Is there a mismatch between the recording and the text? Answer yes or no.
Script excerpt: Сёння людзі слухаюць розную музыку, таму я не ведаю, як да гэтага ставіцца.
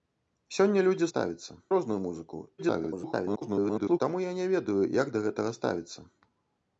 yes